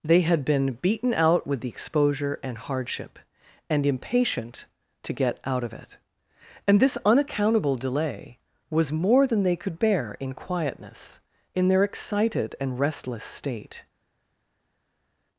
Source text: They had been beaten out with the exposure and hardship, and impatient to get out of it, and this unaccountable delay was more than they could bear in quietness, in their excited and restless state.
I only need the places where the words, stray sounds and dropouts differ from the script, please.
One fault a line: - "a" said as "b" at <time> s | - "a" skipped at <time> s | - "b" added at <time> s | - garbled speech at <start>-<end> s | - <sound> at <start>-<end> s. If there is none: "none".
none